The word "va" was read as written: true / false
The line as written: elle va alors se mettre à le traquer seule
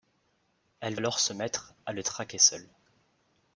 false